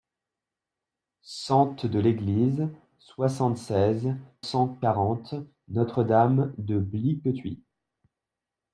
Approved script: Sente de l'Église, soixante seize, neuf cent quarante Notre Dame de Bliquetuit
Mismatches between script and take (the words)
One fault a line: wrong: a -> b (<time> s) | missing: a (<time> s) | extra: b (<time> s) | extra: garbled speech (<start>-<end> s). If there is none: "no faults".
missing: neuf (4.2 s)